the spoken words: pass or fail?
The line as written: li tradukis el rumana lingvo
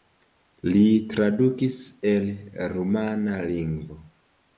pass